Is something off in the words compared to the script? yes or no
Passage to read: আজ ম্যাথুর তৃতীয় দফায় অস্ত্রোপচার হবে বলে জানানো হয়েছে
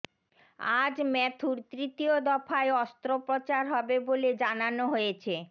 no